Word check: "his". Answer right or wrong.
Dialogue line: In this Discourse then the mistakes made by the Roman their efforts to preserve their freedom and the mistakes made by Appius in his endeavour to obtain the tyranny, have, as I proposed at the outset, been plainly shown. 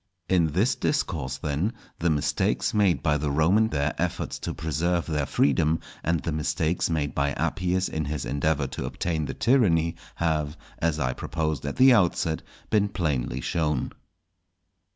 right